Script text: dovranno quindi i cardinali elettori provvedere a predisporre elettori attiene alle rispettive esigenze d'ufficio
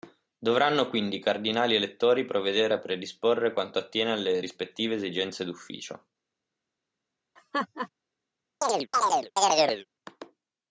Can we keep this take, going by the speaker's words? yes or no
no